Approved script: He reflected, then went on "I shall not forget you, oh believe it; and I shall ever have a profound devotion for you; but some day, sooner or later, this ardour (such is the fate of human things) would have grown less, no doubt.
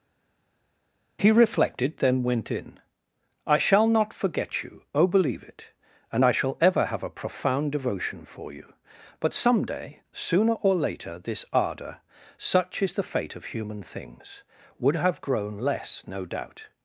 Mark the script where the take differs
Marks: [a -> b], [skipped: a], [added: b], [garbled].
He reflected, then went [on -> in] "I shall not forget you, oh believe it; and I shall ever have a profound devotion for you; but some day, sooner or later, this ardour (such is the fate of human things) would have grown less, no doubt.